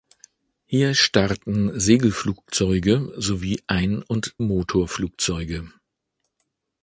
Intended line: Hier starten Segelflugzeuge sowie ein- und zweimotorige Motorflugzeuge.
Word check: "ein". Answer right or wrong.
right